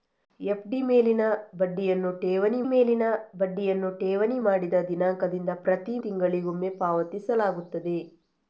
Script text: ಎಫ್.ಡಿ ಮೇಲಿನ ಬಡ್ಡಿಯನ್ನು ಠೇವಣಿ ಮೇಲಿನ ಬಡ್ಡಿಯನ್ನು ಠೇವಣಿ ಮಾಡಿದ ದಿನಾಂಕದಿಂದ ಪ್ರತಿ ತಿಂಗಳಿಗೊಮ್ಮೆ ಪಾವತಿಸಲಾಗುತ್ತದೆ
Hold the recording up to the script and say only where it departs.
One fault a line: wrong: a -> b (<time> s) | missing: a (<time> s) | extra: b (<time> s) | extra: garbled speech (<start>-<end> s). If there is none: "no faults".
no faults